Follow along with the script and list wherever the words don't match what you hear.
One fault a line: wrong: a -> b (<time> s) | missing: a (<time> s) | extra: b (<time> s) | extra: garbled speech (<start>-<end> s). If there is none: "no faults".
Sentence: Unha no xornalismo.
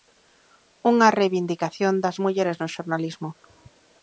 extra: reivindicación das mulleres (1.2 s)